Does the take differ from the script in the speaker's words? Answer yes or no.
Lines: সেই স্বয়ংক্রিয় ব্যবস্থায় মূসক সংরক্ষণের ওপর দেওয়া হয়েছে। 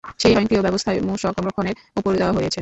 no